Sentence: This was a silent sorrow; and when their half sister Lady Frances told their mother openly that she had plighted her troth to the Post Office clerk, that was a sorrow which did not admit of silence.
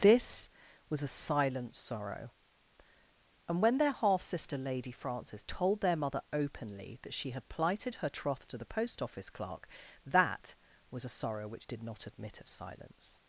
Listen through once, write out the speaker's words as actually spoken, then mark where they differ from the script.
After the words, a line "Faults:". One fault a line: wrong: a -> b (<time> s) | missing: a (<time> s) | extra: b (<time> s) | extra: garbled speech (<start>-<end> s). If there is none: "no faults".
This was a silent sorrow; and when their half sister Lady Frances told their mother openly that she had plighted her troth to the Post Office clerk, that was a sorrow which did not admit of silence.
Faults:
no faults